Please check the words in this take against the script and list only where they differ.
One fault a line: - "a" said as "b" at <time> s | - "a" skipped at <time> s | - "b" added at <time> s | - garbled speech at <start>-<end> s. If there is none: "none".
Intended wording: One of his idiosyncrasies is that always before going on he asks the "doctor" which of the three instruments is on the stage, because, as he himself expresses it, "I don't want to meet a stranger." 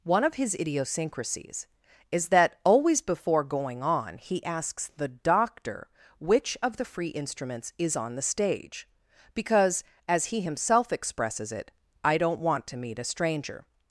- "three" said as "free" at 6.8 s